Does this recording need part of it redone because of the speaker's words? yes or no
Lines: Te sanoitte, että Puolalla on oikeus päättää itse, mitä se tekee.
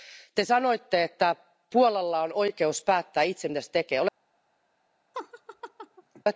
no